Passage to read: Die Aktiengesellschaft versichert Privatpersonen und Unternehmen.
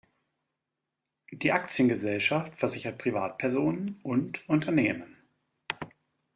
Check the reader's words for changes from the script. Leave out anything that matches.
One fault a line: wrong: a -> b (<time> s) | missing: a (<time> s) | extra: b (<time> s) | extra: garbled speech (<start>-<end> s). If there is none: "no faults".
no faults